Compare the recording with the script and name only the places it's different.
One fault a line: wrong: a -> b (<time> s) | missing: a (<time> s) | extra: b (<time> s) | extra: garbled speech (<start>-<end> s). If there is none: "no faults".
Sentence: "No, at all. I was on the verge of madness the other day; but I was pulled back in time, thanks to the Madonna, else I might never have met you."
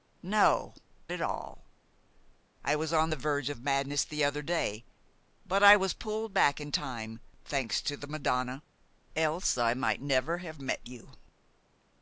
no faults